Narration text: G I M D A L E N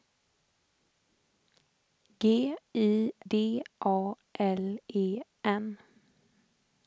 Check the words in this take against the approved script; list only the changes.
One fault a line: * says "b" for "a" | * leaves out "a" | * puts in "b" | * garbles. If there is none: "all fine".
* leaves out "M"